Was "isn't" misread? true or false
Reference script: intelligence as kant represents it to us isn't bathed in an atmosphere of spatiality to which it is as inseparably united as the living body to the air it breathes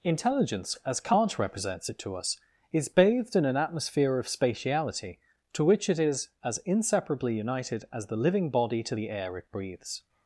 true